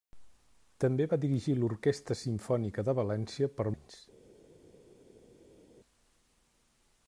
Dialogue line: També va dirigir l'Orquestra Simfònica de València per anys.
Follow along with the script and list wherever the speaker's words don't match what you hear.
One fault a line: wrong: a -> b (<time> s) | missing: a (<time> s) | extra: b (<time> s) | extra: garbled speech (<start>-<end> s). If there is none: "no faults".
no faults